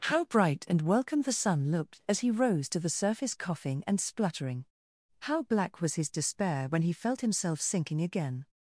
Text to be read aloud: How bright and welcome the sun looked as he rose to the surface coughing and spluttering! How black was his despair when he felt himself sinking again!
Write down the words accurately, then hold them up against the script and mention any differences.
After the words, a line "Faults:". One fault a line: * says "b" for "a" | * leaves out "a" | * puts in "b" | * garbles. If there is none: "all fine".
How bright and welcome the sun looked as he rose to the surface coughing and spluttering! How black was his despair when he felt himself sinking again!
Faults:
all fine